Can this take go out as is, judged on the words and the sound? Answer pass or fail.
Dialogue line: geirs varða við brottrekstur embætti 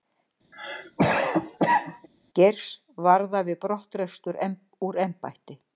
fail